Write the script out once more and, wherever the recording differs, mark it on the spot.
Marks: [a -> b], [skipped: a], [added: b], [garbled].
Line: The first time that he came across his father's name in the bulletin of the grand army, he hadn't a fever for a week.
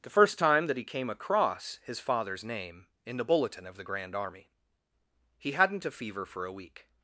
The first time that he came across his father's name in the bulletin of the grand army, he hadn't a fever for a week.